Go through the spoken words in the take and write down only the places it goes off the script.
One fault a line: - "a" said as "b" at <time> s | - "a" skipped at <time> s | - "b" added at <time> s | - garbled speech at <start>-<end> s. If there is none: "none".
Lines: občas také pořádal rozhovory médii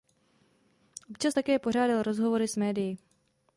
- "s" added at 2.5 s